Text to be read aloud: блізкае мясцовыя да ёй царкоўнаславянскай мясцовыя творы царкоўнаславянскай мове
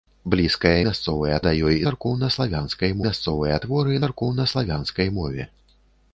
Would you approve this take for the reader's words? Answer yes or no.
yes